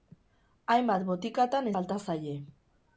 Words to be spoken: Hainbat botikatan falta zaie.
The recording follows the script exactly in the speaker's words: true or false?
true